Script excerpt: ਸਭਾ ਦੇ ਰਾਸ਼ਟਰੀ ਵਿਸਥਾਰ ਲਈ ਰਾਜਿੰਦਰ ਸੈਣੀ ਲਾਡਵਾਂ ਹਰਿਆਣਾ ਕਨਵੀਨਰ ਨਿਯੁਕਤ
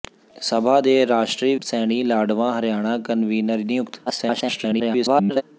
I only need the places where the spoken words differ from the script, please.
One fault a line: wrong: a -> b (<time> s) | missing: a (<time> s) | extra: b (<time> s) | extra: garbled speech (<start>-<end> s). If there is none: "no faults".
missing: ਵਿਸਥਾਰ ਲਈ ਰਾਜਿੰਦਰ (1.6 s)
extra: garbled speech (4.1-5.4 s)